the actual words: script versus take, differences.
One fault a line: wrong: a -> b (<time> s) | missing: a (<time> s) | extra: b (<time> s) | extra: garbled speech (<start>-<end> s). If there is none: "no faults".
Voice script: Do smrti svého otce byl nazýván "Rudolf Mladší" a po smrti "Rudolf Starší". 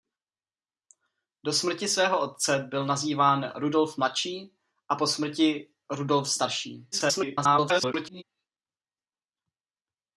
extra: garbled speech (6.9-8.2 s)